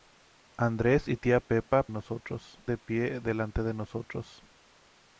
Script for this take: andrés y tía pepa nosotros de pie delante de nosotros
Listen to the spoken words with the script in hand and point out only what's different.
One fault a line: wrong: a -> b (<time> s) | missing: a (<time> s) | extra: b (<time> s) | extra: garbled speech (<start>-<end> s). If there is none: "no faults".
no faults